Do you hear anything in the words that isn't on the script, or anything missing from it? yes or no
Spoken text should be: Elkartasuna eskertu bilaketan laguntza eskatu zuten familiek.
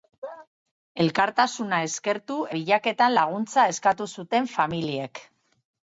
no